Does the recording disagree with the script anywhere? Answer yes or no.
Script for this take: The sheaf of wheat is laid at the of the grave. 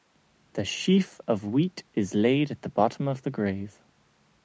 yes